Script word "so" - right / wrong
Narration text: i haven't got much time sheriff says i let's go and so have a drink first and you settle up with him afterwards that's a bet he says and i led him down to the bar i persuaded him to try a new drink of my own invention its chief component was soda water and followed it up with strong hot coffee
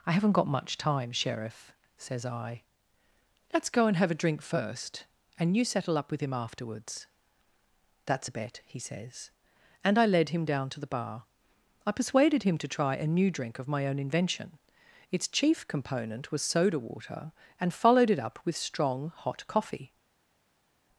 wrong